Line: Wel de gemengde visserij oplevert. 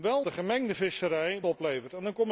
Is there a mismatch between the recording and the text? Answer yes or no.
no